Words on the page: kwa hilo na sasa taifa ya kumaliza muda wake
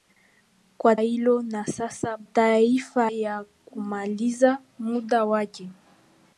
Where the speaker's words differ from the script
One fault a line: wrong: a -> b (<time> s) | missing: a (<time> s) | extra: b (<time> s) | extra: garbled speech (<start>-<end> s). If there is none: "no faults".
no faults